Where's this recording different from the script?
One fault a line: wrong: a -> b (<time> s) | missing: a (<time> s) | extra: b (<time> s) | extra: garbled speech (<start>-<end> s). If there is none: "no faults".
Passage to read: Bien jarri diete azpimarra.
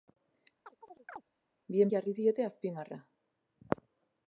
no faults